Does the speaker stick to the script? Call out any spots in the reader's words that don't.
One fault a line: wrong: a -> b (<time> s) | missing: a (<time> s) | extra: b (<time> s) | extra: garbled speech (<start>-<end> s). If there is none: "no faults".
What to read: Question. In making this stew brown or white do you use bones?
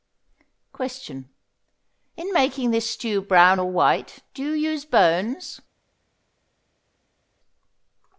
no faults